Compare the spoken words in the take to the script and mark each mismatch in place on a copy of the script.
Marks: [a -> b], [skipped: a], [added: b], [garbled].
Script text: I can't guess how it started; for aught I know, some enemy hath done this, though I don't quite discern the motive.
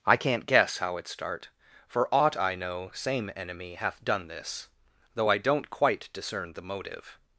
I can't guess how it [started; -> start] for aught I know, [some -> same] enemy hath done this, though I don't quite discern the motive.